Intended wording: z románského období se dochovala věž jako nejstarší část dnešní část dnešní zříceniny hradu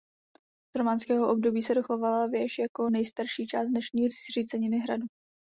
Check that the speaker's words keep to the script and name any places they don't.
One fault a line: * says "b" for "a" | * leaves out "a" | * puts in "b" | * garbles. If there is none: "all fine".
* leaves out "část dnešní"